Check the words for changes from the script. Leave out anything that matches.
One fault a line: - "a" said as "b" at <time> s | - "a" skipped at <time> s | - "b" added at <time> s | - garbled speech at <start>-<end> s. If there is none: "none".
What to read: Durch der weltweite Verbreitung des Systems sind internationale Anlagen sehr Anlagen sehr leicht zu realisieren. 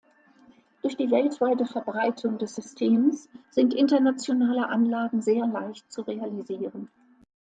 - "der" said as "die" at 1.0 s
- "Anlagen sehr" skipped at 5.5 s